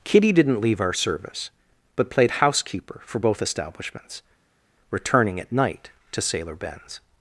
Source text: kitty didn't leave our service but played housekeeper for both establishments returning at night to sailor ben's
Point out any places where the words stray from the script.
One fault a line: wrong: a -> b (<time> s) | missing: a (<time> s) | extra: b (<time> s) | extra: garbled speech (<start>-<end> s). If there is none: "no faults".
no faults